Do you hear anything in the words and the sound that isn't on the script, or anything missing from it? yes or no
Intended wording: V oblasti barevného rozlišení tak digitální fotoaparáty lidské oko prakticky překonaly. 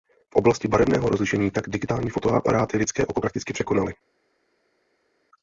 no